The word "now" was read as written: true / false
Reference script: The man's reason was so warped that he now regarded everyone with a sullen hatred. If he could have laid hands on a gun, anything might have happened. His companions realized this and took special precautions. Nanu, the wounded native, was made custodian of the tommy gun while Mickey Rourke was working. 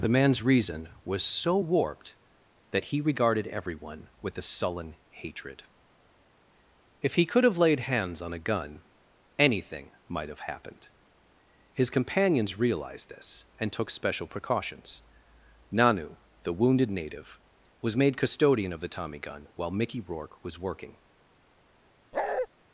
false